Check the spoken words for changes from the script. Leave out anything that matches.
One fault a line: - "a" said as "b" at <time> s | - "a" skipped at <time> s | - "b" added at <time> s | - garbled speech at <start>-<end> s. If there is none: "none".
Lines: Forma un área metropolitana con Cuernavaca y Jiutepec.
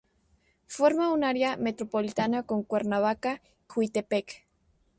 - "y" skipped at 3.4 s